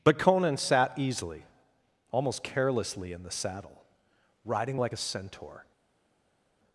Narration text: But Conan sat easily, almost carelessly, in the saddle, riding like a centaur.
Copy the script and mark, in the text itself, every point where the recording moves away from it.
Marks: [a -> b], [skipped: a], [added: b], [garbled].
But Conan sat easily, almost carelessly, in the saddle, riding like a centaur.